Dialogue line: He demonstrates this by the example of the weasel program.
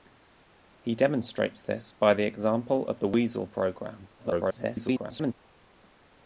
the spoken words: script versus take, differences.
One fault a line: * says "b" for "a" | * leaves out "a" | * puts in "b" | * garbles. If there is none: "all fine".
* garbles